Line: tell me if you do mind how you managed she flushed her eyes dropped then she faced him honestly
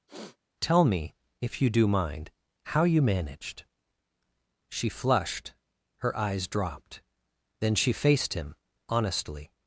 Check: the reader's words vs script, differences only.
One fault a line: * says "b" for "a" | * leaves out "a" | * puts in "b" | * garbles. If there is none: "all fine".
all fine